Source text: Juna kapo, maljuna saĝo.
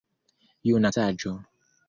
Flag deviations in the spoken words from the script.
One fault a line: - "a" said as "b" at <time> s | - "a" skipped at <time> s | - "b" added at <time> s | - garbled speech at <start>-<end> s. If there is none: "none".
- "kapo maljuna" skipped at 0.9 s